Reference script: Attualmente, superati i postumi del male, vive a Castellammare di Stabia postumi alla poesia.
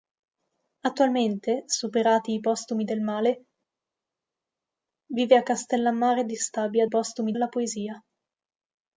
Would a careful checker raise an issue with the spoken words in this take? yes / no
no